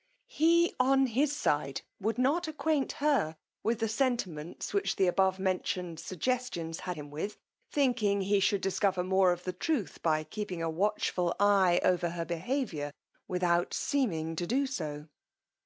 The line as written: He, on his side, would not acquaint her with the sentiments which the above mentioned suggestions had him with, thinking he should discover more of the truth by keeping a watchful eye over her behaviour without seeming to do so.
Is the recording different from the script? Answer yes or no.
no